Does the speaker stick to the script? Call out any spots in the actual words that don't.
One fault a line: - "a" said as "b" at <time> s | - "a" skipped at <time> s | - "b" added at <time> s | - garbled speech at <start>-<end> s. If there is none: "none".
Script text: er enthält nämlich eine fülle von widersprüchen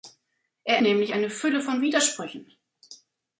- "enthält" skipped at 0.8 s